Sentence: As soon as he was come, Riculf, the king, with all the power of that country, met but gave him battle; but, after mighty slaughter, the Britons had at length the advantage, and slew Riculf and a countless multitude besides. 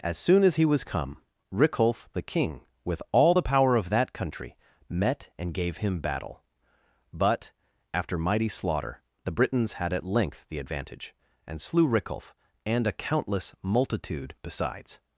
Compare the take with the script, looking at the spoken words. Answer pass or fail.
fail